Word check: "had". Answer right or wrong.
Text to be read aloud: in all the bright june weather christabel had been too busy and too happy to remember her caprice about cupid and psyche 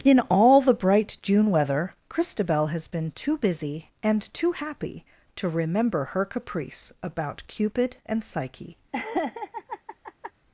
wrong